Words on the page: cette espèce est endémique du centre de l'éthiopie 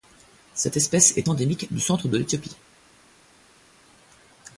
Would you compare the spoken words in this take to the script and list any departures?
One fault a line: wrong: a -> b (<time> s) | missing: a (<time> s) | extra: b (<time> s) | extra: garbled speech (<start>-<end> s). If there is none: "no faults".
no faults